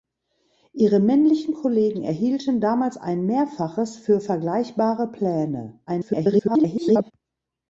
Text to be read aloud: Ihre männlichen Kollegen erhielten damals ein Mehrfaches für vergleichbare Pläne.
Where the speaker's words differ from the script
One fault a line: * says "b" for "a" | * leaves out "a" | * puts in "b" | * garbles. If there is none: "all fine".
* garbles